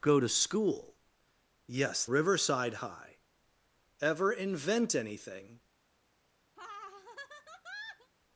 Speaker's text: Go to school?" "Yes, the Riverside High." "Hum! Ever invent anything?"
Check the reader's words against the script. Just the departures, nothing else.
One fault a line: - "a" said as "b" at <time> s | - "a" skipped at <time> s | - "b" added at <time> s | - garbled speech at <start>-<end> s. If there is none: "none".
- "the" skipped at 2.1 s
- "Hum" skipped at 3.2 s